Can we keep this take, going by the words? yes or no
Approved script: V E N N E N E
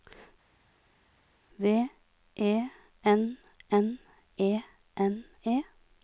yes